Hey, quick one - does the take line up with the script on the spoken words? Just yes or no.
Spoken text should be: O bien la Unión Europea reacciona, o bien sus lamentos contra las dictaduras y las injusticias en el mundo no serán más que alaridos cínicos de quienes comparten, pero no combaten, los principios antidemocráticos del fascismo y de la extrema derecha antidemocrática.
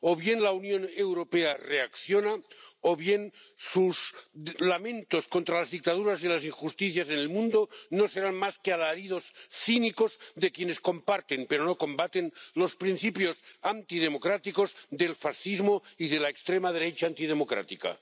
yes